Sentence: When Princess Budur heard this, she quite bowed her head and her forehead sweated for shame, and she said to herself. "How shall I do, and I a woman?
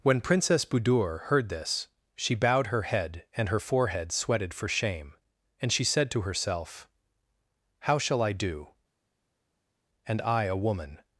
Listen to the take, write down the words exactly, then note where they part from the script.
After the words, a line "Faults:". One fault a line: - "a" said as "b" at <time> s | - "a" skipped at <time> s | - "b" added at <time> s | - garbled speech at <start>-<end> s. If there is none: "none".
When Princess Budur heard this, she bowed her head and her forehead sweated for shame, and she said to herself. "How shall I do, and I a woman?
Faults:
- "quite" skipped at 2.3 s